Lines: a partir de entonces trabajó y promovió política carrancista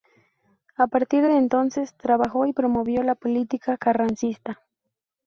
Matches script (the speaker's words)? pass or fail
fail